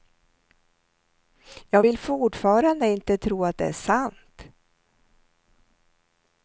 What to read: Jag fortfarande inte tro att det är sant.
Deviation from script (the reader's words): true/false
true